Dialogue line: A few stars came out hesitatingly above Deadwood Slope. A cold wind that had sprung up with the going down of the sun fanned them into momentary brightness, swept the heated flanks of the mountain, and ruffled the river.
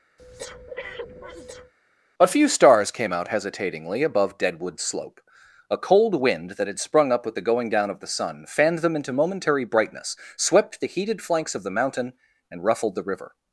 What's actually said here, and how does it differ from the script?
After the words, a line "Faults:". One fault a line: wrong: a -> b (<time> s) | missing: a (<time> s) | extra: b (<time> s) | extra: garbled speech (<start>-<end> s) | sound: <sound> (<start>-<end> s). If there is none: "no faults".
A few stars came out hesitatingly above Deadwood Slope. A cold wind that had sprung up with the going down of the sun fanned them into momentary brightness, swept the heated flanks of the mountain, and ruffled the river.
Faults:
sound: breath (0.2-1.7 s)